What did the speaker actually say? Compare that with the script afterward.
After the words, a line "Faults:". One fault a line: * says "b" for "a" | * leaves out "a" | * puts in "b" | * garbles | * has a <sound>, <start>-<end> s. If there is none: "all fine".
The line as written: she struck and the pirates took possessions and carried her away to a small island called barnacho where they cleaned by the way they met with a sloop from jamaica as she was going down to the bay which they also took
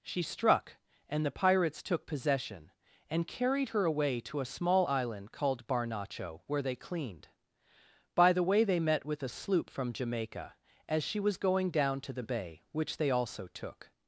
she struck and the pirates took possession and carried her away to a small island called barnacho where they cleaned by the way they met with a sloop from jamaica as she was going down to the bay which they also took
Faults:
* says "possession" for "possessions"